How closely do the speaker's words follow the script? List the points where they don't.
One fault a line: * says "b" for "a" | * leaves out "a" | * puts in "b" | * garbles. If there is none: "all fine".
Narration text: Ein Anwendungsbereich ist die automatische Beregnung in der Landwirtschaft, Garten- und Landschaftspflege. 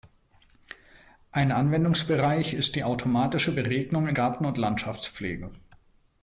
* leaves out "der Landwirtschaft"